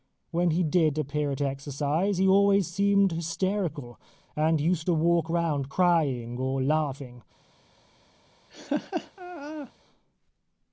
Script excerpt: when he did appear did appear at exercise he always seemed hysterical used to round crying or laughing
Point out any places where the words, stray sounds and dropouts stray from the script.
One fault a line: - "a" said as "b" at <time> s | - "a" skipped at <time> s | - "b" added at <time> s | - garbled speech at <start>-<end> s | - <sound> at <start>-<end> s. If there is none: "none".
- "did appear" skipped at 1.3 s
- "and" added at 4.3 s
- "walk" added at 4.9 s
- laugh at 8.5-9.7 s